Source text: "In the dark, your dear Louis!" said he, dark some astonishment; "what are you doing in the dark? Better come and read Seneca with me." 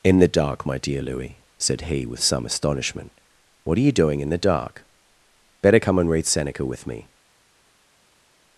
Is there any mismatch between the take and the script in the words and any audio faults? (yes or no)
yes